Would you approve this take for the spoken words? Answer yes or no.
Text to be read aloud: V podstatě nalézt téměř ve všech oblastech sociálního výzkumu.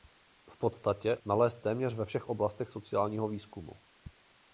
yes